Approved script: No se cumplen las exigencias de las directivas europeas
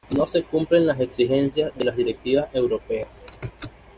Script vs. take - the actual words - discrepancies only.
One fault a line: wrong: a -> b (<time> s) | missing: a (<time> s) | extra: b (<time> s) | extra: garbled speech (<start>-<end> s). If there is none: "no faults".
no faults